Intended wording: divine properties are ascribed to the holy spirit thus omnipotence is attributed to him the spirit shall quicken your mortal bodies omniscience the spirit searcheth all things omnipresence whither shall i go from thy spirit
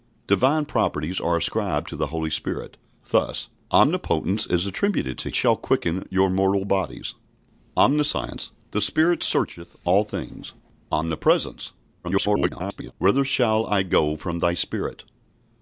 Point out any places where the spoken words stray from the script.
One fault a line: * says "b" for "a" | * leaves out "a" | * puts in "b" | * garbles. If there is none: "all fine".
* leaves out "him the spirit"
* garbles